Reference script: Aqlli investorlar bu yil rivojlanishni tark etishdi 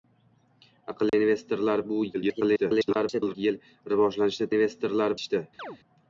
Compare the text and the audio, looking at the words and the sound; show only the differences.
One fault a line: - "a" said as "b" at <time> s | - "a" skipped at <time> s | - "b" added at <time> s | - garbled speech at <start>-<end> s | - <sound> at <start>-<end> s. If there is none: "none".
- dropout at 1.1-1.1 s
- garbled speech at 2.1-3.3 s
- "tark" said as "investorlar" at 4.6 s
- chirp at 5.6-5.8 s